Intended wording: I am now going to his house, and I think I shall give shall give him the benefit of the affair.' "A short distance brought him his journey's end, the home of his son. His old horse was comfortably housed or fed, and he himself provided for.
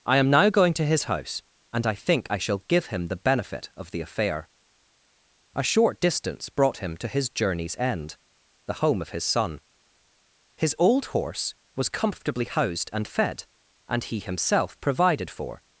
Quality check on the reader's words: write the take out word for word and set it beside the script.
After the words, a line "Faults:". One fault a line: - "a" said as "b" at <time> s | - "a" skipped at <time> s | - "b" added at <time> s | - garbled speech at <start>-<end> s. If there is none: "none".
I am now going to his house, and I think I shall give him the benefit of the affair.' "A short distance brought him to his journey's end, the home of his son. His old horse was comfortably housed and fed, and he himself provided for.
Faults:
- "shall give" skipped at 2.9 s
- "to" added at 7.0 s
- "or" said as "and" at 12.9 s